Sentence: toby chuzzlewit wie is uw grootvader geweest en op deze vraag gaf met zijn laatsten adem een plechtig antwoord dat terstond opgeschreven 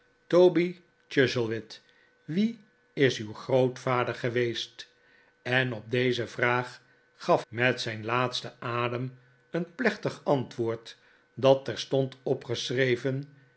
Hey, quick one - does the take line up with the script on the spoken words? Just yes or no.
yes